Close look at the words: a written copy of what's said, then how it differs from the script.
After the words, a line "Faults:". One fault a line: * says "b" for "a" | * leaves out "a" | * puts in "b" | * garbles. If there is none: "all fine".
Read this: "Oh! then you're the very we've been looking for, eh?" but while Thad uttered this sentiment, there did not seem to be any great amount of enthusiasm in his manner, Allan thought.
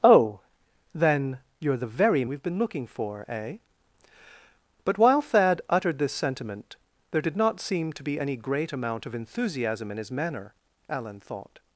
"Oh! then you're the very we've been looking for, eh?" but while Thad uttered this sentiment, there did not seem to be any great amount of enthusiasm in his manner, Allan thought.
Faults:
all fine